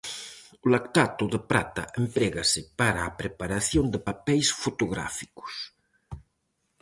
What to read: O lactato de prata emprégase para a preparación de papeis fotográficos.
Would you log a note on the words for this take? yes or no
no